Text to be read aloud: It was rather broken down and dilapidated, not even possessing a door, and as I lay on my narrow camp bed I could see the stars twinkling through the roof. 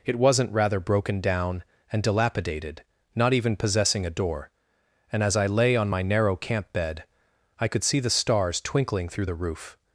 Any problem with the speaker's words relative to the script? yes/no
yes